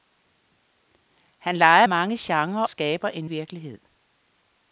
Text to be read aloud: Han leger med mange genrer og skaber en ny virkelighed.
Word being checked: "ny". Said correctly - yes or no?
no